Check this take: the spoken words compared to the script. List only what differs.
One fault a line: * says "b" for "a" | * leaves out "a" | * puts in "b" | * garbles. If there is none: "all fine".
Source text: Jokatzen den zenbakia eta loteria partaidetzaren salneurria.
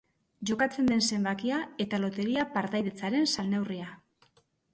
all fine